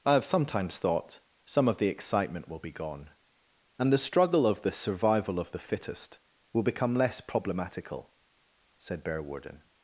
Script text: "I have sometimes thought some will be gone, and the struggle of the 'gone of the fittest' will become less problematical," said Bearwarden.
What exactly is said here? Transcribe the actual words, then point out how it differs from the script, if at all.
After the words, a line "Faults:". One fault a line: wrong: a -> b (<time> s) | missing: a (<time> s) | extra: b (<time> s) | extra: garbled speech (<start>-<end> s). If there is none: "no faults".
"I have sometimes thought some of the excitement will be gone, and the struggle of the 'survival of the fittest' will become less problematical," said Bearwarden.
Faults:
extra: of the excitement (1.7 s)
wrong: gone -> survival (4.7 s)